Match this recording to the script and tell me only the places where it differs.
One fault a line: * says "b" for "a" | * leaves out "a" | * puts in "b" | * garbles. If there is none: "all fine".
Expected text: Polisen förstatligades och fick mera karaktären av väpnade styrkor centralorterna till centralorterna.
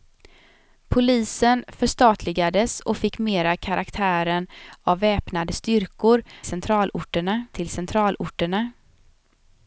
all fine